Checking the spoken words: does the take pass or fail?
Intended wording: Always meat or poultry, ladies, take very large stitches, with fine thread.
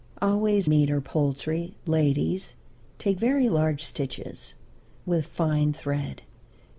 pass